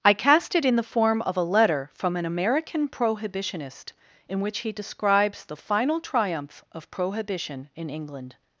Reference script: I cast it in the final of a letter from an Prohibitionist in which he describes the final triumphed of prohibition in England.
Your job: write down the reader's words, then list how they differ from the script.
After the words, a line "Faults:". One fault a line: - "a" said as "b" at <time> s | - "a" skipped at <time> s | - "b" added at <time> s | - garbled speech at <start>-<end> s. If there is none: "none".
I cast it in the form of a letter from an American prohibitionist in which he describes the final triumph of prohibition in England.
Faults:
- "final" said as "form" at 0.9 s
- "American" added at 2.2 s
- "triumphed" said as "triumph" at 6.0 s